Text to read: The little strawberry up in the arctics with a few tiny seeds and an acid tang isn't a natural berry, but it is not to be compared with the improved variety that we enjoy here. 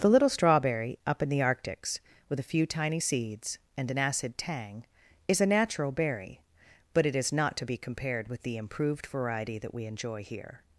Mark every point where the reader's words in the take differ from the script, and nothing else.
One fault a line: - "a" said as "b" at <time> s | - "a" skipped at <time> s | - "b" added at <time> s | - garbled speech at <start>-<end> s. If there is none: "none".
- "isn't" said as "is" at 5.3 s